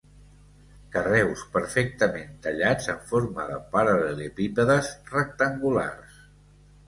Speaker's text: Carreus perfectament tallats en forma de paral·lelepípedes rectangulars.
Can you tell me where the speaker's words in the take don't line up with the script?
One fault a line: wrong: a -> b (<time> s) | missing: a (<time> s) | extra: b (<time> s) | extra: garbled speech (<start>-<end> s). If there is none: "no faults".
no faults